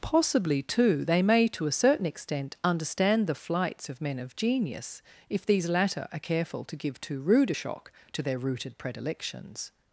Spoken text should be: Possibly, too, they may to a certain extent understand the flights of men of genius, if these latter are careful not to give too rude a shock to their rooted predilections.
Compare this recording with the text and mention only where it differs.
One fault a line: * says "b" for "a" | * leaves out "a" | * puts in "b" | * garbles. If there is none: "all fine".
* leaves out "not"